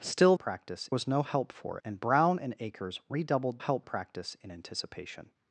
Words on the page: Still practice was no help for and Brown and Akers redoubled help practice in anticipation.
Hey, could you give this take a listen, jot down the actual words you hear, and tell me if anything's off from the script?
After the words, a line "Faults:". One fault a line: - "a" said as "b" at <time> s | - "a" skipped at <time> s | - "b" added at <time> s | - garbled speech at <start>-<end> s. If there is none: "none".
Still practice was no help for and Brown and Akers redoubled help practice in anticipation.
Faults:
none